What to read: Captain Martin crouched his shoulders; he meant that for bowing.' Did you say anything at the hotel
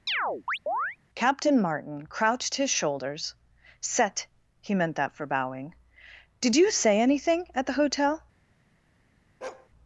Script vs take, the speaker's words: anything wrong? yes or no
yes